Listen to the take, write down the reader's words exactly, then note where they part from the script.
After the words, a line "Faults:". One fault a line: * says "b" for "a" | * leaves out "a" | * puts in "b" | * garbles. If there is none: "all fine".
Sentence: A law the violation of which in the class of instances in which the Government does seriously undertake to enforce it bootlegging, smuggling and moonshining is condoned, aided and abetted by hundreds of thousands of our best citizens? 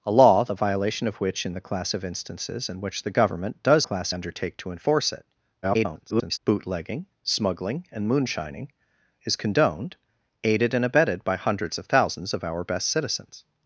A law the violation of which in the class of instances in which the Government does class undertake to enforce it [garbled] bootlegging, smuggling and moonshining is condoned, aided and abetted by hundreds of thousands of our best citizens?
Faults:
* says "class" for "seriously"
* garbles